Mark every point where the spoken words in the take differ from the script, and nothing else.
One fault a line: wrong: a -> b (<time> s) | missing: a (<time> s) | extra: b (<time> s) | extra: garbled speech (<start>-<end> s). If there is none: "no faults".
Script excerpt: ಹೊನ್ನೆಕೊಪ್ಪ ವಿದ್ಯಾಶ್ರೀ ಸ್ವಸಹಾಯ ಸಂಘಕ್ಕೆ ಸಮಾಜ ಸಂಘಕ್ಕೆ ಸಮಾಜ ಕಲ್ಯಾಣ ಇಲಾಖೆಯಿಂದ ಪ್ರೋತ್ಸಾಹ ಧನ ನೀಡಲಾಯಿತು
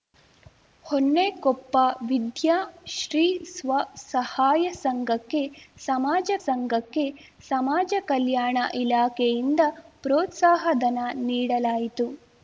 no faults